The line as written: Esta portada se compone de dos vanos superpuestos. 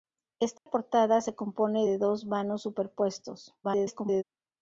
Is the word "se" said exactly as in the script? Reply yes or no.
yes